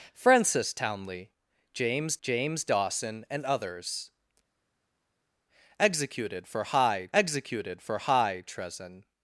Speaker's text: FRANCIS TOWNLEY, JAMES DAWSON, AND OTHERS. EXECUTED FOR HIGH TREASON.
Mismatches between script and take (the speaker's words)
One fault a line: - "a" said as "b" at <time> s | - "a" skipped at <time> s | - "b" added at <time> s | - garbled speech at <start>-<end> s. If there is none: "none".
- "JAMES" added at 2.2 s
- "executed FOR HIGH" added at 7.1 s